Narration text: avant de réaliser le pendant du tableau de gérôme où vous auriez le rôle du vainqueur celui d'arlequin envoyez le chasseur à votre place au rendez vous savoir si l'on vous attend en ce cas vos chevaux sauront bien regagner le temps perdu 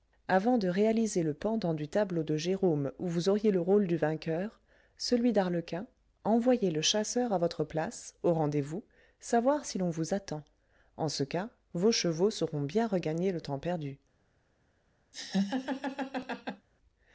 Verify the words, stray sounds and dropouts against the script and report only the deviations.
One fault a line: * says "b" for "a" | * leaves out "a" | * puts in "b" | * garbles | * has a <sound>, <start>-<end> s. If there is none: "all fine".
* has a laugh, 15.1-16.7 s